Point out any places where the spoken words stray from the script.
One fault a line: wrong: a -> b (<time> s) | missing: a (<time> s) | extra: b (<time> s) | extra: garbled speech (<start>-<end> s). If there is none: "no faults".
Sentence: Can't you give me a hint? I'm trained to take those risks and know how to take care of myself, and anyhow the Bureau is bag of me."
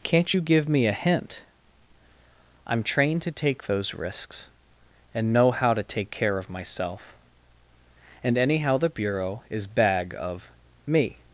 no faults